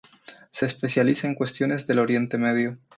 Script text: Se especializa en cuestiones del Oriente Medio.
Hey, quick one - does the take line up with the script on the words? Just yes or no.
yes